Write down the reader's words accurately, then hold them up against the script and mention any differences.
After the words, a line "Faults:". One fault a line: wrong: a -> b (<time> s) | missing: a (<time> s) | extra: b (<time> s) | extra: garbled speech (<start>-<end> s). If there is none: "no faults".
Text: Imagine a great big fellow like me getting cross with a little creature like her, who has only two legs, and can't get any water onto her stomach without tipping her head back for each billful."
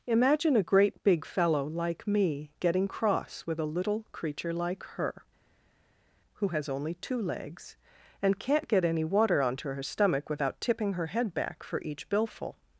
Imagine a great big fellow like me getting cross with a little creature like her, who has only two legs, and can't get any water onto her stomach without tipping her head back for each billful."
Faults:
no faults